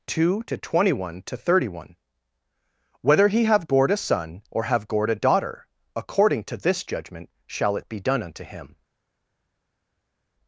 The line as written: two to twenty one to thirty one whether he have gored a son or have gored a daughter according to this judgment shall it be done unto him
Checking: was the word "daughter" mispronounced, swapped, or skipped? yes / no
no